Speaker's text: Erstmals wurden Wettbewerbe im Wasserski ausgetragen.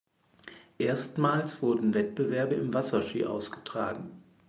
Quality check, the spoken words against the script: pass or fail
pass